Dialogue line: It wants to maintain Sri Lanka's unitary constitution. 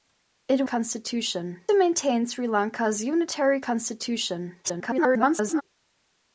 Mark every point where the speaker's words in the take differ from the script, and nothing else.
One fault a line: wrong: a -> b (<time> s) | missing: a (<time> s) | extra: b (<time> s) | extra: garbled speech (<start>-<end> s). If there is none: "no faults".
wrong: wants -> constitution (0.6 s)
extra: garbled speech (4.6-5.6 s)